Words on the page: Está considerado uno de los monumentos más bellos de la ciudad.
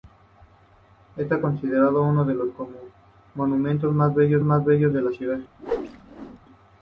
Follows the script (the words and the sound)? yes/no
no